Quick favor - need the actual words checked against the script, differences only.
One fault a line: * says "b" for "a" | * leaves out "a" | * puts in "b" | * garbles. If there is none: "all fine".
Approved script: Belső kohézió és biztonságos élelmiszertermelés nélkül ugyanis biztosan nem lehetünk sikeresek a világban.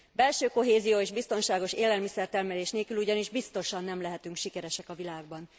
all fine